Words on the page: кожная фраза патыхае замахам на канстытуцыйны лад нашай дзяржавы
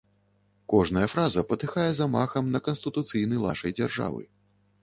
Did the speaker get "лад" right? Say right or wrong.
wrong